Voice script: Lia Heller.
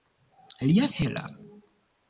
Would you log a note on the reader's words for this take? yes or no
no